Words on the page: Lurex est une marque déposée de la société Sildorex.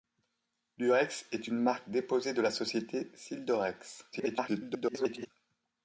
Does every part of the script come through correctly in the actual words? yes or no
no